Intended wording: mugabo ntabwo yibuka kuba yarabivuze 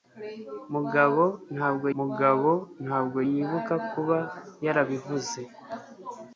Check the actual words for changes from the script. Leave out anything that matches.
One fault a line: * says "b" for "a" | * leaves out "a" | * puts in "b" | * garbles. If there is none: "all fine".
* puts in "mugabo ntabwo"